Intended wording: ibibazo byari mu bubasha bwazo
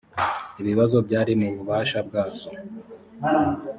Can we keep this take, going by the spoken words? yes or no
yes